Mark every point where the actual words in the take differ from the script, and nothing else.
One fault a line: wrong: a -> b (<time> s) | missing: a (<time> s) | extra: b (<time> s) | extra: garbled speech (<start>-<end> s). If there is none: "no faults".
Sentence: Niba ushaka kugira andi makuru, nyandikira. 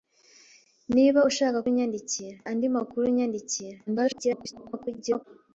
wrong: kugira -> nyandikira (1.7 s)
extra: garbled speech (3.9-5.2 s)